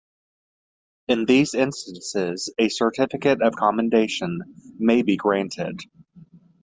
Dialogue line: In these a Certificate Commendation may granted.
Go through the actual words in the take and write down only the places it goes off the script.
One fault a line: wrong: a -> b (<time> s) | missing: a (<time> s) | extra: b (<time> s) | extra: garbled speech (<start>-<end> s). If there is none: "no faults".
extra: instances (1.5 s)
extra: of (3.4 s)
extra: be (5.0 s)